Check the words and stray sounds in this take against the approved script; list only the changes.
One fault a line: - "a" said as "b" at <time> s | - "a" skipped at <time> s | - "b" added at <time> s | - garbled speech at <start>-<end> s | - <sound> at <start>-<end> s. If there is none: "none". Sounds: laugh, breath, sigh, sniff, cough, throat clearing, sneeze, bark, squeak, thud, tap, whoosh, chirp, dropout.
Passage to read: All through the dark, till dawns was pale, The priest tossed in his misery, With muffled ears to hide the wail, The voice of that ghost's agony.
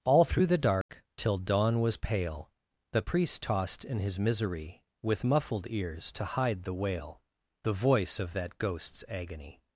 - dropout at 0.8-0.9 s
- "dawns" said as "dawn" at 1.4 s